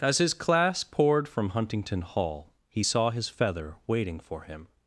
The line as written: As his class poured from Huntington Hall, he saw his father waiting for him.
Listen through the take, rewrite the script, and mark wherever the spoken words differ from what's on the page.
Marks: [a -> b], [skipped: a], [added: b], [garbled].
As his class poured from Huntington Hall, he saw his [father -> feather] waiting for him.